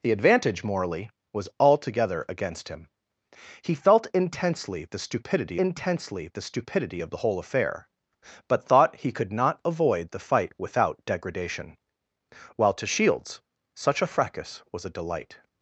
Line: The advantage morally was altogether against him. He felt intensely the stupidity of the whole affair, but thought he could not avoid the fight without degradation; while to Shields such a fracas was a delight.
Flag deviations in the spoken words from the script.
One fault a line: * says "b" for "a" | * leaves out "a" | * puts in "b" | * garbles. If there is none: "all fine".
* puts in "intensely the stupidity"